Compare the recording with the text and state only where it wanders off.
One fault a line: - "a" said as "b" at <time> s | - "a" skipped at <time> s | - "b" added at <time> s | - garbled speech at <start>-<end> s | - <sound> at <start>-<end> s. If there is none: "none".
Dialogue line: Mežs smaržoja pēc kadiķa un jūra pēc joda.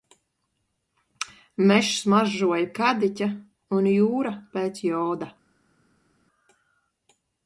- "pēc" skipped at 2.7 s